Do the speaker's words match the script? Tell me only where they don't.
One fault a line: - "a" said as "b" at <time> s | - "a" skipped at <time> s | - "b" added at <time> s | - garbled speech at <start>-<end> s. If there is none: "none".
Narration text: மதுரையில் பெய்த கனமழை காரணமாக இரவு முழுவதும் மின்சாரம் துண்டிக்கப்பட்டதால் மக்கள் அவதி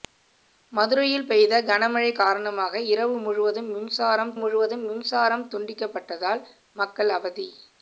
- "முழுவதும் மின்சாரம்" added at 4.3 s